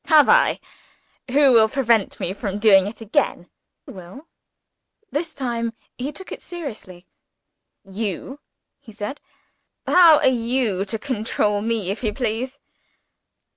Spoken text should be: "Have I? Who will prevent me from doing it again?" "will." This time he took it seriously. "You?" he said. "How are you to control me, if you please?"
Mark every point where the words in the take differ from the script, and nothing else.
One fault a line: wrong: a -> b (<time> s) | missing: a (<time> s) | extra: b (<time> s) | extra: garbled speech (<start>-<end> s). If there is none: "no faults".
no faults